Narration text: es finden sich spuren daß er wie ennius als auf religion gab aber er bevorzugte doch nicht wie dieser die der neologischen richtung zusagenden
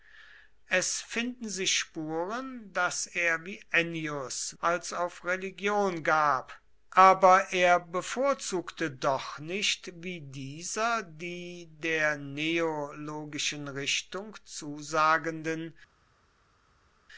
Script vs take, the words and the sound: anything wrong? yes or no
no